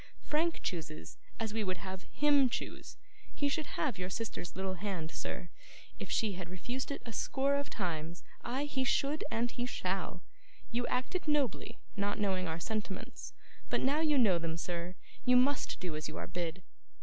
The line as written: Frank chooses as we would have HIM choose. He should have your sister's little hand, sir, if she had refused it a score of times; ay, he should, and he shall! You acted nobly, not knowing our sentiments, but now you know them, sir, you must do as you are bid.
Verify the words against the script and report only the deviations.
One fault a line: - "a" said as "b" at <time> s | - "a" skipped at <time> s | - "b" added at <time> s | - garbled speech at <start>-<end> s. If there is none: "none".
none